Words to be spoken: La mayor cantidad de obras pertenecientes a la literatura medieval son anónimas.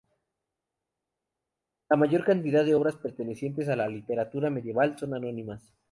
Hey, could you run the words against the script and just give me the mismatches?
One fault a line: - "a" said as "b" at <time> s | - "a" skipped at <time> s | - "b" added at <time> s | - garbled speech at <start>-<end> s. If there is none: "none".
none